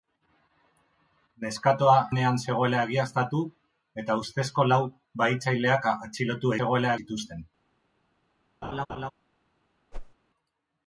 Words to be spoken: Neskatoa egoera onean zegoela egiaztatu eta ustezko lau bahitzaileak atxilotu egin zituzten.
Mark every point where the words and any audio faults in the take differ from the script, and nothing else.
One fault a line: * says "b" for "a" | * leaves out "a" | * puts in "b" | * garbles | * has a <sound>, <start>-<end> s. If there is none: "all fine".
* leaves out "egoera"
* says "zegoela" for "egin"
* has a laugh, 8.6-9.1 s
* has a whoosh, 9.9-10.1 s